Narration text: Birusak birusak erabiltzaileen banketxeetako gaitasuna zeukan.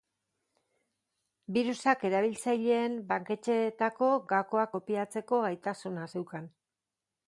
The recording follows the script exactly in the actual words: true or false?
false